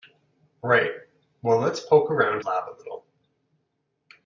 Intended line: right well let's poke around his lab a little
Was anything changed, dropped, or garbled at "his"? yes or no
yes